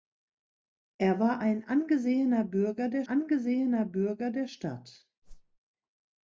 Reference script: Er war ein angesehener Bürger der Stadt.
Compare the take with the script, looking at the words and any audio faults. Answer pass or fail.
fail